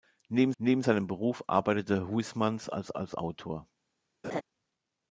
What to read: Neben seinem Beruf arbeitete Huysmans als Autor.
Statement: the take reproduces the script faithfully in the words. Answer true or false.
false